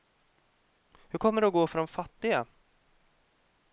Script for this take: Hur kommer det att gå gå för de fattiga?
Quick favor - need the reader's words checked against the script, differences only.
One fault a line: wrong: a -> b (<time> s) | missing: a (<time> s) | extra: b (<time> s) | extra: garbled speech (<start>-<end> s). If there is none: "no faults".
missing: gå (1.7 s)